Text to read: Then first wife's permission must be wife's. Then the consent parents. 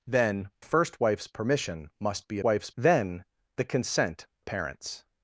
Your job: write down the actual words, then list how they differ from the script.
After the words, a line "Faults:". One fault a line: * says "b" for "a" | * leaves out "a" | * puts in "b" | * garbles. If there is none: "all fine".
Then first wife's permission must be wife's. Then the consent parents.
Faults:
all fine